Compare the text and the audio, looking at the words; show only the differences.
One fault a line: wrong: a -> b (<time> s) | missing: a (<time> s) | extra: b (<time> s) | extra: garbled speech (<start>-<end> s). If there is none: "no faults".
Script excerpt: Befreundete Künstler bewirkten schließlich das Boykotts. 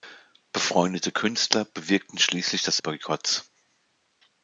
no faults